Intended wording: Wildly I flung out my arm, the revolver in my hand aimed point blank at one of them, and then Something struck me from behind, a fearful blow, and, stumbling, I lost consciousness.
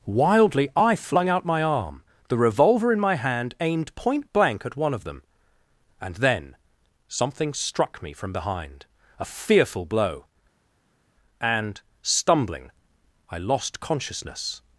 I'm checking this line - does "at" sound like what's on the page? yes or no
yes